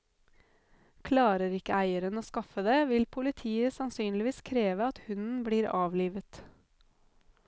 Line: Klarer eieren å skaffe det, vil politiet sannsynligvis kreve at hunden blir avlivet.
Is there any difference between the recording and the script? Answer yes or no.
yes